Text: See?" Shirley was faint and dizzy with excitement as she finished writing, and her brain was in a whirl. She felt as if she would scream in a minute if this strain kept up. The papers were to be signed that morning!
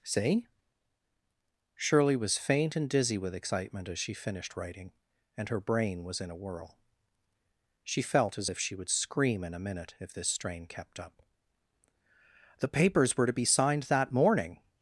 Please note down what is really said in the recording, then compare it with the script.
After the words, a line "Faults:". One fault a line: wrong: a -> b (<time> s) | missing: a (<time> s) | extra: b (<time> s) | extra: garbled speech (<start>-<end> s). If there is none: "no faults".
See?" Shirley was faint and dizzy with excitement as she finished writing, and her brain was in a whirl. She felt as if she would scream in a minute if this strain kept up. The papers were to be signed that morning!
Faults:
no faults